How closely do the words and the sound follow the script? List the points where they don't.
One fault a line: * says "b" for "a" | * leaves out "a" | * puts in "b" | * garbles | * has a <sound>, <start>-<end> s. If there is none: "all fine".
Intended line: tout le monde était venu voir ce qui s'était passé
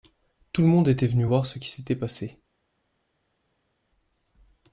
all fine